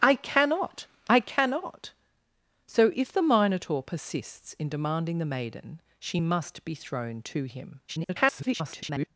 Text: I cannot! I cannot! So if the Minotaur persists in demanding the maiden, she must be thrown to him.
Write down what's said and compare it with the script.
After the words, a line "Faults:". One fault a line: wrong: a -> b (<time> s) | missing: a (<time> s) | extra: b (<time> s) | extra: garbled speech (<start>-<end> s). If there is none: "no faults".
I cannot! I cannot! So if the Minotaur persists in demanding the maiden, she must be thrown to him. [garbled]
Faults:
extra: garbled speech (7.9-9.1 s)